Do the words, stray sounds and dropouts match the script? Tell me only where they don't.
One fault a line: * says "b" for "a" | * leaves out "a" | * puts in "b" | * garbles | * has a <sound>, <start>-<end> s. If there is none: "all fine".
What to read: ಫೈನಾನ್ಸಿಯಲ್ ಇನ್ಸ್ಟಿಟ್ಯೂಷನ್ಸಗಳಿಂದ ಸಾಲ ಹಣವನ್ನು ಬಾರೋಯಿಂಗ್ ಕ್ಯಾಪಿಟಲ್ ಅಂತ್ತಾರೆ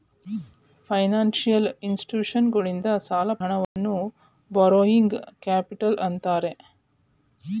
* has a dropout, 3.6-3.8 s